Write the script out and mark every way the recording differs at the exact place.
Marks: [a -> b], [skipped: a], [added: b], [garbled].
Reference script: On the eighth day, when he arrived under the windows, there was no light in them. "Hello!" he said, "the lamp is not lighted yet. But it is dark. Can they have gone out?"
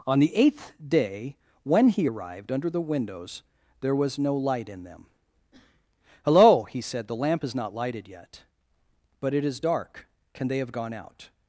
On the eighth day, when he arrived under the windows, there was no light in them. "Hello!" he said, "the lamp is not lighted yet. But it is dark. Can they have gone out?"